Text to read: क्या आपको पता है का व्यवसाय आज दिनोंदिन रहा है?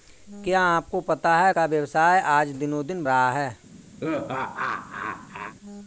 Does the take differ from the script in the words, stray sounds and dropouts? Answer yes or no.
yes